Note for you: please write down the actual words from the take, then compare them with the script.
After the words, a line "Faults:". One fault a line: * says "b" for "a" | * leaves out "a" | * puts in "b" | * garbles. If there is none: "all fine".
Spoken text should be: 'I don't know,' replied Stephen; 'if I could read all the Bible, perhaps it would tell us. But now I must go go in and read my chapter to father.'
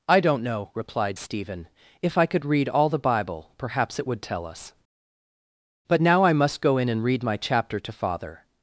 'I don't know,' replied Stephen; 'if I could read all the Bible, perhaps it would tell us. But now I must go in and read my chapter to father.'
Faults:
* leaves out "go"